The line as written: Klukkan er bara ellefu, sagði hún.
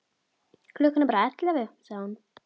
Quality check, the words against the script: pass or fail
pass